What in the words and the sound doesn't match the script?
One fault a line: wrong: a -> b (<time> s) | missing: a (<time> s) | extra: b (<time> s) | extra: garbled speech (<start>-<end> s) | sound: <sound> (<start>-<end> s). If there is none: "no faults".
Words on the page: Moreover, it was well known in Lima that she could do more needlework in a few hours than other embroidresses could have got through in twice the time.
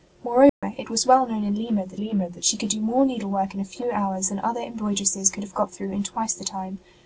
sound: dropout (0.5-0.6 s)
extra: Lima that (1.9 s)